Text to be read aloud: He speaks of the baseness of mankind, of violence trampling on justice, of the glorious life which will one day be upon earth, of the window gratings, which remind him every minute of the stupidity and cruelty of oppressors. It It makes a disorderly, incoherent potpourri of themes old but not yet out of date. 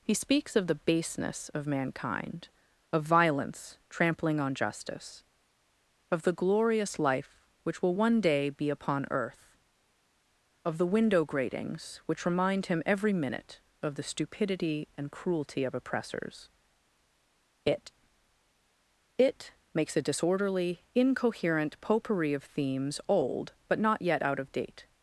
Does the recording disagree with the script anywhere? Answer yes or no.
no